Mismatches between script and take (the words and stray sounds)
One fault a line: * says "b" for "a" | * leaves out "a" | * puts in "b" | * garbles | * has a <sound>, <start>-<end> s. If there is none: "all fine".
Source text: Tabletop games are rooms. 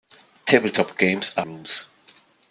all fine